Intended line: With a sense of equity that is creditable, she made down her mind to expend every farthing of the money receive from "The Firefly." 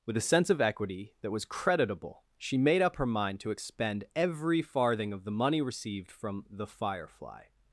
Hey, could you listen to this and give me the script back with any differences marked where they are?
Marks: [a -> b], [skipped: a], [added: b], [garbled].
With a sense of equity that [is -> was] creditable, she made [down -> up] her mind to expend every farthing of the money [receive -> received] from "The Firefly."